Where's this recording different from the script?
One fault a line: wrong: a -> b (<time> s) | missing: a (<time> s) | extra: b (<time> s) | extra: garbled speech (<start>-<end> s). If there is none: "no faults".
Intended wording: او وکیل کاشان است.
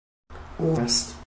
missing: وکیل کاشان (0.8 s)